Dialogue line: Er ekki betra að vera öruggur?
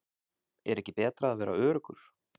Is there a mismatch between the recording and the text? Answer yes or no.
no